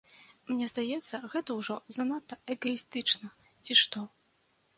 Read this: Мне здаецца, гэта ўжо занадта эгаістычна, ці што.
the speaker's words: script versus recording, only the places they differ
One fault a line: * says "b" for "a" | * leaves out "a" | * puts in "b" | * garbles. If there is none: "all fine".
all fine